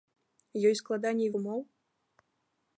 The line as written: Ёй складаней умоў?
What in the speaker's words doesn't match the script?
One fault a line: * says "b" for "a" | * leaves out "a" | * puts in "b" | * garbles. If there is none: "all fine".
all fine